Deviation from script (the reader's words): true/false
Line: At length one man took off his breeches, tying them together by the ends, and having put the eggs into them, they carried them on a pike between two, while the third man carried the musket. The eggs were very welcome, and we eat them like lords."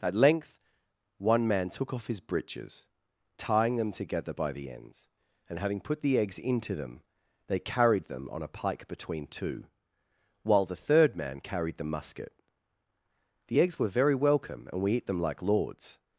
false